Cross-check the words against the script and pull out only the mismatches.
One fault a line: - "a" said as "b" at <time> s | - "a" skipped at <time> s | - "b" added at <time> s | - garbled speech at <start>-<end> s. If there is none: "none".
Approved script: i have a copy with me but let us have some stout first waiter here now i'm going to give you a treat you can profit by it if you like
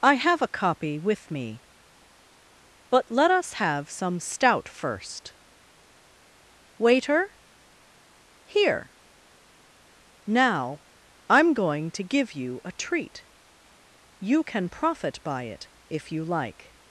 none